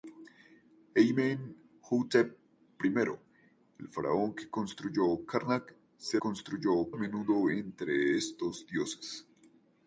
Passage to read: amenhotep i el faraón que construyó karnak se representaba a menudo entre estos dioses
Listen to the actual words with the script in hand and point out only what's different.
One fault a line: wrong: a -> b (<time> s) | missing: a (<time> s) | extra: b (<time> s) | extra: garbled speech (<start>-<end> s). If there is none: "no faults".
wrong: representaba -> construyó (6.2 s)